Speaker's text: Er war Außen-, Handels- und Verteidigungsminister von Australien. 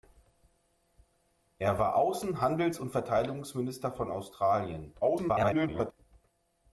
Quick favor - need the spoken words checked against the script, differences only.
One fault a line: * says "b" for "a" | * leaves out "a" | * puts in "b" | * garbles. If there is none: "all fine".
* garbles